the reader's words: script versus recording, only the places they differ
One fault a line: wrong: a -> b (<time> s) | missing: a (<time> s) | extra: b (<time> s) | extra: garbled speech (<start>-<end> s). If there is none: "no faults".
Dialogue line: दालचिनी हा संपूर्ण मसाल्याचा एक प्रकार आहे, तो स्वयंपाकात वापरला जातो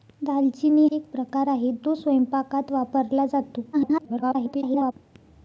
missing: हा संपूर्ण मसाल्याचा (0.8 s)
extra: garbled speech (3.7-4.9 s)